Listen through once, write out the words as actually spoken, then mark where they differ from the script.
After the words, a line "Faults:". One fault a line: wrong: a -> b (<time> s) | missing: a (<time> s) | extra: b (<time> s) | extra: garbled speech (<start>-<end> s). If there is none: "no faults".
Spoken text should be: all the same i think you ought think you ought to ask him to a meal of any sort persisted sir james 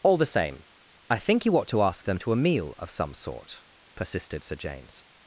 all the same i think you ought to ask them to a meal of some sort persisted sir james
Faults:
missing: think you ought (1.7 s)
wrong: him -> them (2.0 s)
wrong: any -> some (2.9 s)